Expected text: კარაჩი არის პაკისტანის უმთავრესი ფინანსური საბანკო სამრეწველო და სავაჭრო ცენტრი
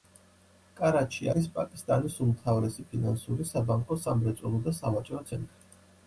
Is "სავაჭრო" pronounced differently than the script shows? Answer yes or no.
no